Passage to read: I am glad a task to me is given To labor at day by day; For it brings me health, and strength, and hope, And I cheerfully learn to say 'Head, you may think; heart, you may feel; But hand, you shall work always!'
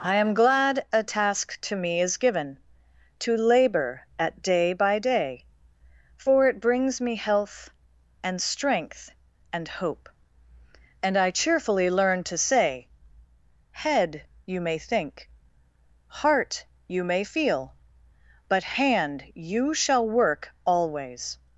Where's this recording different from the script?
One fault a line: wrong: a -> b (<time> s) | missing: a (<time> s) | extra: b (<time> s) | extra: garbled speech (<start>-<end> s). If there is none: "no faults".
no faults